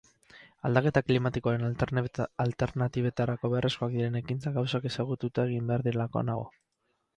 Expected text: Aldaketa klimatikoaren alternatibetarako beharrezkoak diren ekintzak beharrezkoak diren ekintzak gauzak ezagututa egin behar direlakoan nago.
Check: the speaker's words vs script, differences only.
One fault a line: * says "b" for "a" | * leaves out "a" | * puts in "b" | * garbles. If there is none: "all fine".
* leaves out "beharrezkoak diren ekintzak"